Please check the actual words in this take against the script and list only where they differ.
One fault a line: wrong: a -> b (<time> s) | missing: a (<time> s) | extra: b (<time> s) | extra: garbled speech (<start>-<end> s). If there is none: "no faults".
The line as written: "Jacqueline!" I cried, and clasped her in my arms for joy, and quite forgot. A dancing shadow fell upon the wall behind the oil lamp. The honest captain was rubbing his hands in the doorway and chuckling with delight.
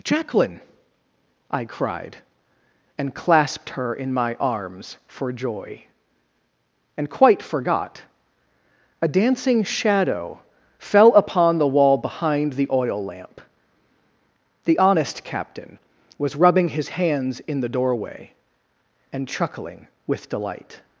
no faults